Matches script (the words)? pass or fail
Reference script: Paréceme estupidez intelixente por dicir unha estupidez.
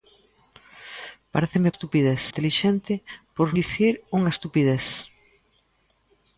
pass